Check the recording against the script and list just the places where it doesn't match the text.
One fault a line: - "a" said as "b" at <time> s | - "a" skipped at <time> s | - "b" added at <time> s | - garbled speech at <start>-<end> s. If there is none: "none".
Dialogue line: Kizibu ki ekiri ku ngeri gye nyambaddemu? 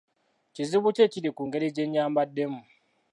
none